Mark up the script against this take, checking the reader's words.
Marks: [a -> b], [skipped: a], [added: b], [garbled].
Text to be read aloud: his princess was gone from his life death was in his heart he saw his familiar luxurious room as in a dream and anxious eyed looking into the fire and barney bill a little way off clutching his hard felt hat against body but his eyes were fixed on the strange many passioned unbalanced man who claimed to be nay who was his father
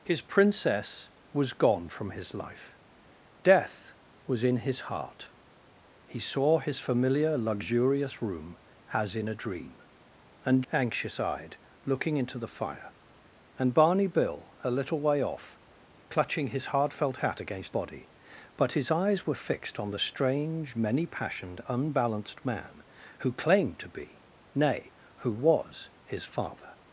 his princess was gone from his life death was in his heart he saw his familiar luxurious room as in a dream and anxious eyed looking into the fire and barney bill a little way off clutching his hard felt hat against body but his eyes were fixed on the strange many passioned unbalanced man who claimed to be nay who was his father